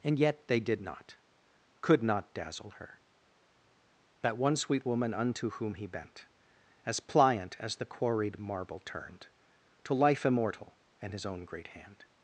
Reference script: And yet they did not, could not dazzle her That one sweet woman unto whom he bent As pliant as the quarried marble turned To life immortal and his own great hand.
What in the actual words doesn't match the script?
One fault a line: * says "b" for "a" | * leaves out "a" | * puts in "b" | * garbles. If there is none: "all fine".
all fine